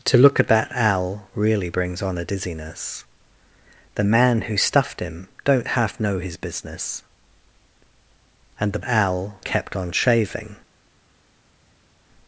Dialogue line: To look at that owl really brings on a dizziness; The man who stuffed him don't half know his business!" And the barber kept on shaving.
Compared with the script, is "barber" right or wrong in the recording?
wrong